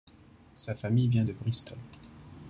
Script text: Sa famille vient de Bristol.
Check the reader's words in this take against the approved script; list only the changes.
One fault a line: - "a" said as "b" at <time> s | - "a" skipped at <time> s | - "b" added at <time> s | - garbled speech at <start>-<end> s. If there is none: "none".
none